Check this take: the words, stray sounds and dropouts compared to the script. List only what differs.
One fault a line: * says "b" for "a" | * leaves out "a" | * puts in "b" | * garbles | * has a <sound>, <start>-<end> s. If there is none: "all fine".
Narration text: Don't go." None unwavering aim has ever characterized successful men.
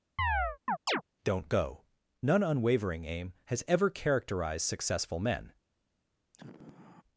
* has a chirp, 0.2-1.0 s
* has a sigh, 6.3-7.0 s